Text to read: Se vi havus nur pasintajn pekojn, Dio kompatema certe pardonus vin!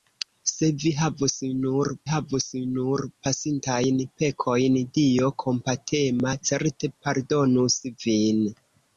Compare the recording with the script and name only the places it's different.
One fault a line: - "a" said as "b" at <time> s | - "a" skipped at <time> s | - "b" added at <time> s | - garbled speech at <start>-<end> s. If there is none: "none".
- "havus nur" added at 2.1 s